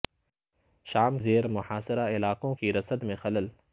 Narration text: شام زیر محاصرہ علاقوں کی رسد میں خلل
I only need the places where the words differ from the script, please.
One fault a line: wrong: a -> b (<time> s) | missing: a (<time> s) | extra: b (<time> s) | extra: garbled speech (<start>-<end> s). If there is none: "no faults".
no faults